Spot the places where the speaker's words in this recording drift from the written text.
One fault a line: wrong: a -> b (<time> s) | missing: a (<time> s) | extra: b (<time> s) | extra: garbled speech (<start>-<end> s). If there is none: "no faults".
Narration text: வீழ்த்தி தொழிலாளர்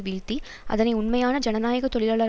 extra: அதனை உண்மையான ஜனநாயக (0.7 s)